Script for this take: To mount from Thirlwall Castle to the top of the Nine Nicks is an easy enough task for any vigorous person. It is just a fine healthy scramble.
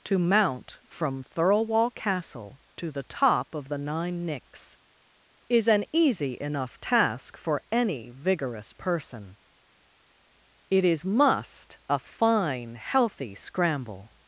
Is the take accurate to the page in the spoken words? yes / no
no